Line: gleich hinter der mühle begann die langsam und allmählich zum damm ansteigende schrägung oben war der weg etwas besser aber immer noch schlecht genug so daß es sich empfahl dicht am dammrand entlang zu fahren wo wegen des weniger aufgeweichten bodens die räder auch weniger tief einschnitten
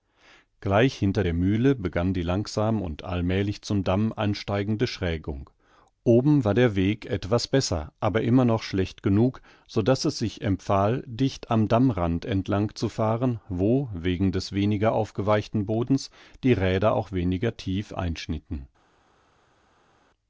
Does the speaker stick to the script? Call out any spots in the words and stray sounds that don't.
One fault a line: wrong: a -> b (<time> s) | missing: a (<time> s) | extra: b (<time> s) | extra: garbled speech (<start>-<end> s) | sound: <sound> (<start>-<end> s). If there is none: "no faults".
no faults